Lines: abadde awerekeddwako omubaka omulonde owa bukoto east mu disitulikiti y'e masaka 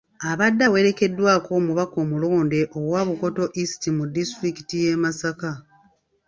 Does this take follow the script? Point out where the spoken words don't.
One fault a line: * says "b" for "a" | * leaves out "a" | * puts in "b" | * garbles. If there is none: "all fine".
all fine